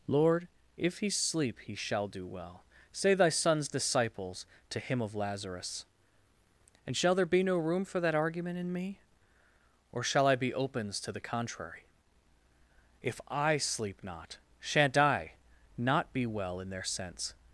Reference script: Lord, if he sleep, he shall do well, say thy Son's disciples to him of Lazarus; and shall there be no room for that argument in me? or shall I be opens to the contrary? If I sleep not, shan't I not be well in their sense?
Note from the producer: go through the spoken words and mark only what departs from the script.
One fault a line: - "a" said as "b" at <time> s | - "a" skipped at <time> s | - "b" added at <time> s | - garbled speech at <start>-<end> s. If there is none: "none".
none